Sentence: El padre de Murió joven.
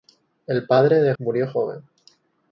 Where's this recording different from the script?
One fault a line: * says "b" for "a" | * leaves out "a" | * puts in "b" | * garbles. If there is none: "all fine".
all fine